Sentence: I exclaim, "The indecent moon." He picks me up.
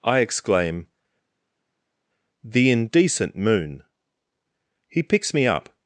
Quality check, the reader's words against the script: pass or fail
pass